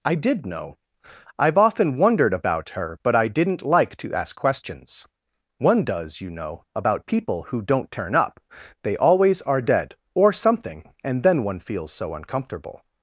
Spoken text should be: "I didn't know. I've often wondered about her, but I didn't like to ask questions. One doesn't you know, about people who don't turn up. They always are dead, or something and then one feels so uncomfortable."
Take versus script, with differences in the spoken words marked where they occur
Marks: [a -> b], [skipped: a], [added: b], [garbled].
"I [didn't -> did] know. I've often wondered about her, but I didn't like to ask questions. One [doesn't -> does] you know, about people who don't turn up. They always are dead, or something and then one feels so uncomfortable."